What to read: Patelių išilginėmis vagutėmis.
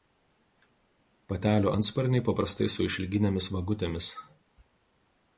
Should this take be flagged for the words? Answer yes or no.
yes